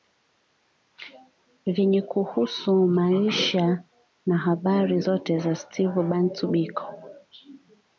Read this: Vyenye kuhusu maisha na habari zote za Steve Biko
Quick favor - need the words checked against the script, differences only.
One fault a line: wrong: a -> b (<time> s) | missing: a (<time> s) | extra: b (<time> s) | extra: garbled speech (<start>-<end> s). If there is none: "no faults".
extra: Bantu (6.0 s)